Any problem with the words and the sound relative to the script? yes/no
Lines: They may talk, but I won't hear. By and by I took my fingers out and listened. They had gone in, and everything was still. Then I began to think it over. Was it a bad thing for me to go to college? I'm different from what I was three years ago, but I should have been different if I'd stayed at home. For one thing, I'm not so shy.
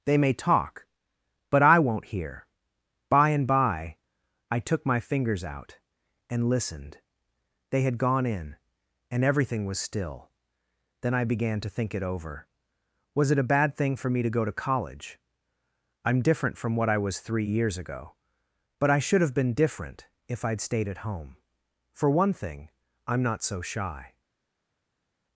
no